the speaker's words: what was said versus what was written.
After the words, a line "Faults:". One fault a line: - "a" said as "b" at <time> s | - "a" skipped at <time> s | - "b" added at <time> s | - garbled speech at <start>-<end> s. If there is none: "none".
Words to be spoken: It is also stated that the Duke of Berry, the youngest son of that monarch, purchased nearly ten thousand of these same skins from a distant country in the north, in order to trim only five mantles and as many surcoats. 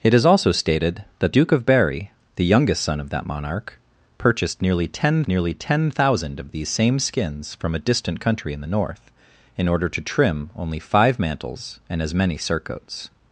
It is also stated that Duke of Berry, the youngest son of that monarch, purchased nearly ten nearly ten thousand of these same skins from a distant country in the north, in order to trim only five mantles and as many surcoats.
Faults:
- "the" skipped at 1.4 s
- "nearly ten" added at 5.3 s